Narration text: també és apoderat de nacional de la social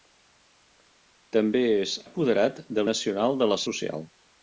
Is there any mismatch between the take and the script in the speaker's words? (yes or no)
no